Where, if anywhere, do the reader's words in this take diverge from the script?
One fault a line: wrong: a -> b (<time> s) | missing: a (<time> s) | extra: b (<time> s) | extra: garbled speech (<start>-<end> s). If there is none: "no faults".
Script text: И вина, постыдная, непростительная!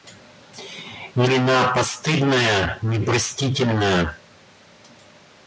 no faults